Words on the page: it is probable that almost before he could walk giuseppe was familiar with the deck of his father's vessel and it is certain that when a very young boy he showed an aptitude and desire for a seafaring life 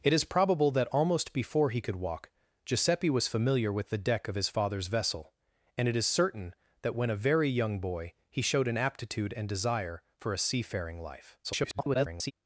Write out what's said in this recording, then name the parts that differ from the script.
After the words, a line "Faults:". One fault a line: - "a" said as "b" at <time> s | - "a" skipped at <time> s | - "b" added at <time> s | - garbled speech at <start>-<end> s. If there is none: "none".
it is probable that almost before he could walk giuseppe was familiar with the deck of his father's vessel and it is certain that when a very young boy he showed an aptitude and desire for a seafaring life [garbled]
Faults:
- garbled speech at 11.4-12.3 s